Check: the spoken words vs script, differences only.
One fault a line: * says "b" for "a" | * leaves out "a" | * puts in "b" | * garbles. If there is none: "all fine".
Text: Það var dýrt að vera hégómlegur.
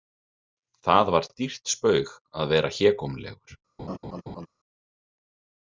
* puts in "spaug"